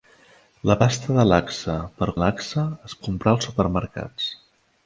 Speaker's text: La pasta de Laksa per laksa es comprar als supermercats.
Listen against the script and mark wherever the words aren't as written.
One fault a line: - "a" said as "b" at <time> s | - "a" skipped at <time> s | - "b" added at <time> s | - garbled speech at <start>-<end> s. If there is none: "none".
none